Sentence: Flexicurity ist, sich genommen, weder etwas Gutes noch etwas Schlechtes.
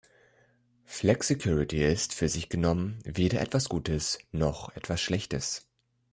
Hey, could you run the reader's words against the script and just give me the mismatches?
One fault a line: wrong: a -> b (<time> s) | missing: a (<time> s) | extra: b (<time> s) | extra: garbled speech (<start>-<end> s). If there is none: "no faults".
extra: für (2.1 s)